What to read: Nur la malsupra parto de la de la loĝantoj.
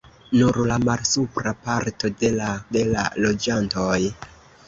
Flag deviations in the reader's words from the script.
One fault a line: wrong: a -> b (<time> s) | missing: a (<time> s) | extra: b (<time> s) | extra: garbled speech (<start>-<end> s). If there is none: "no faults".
no faults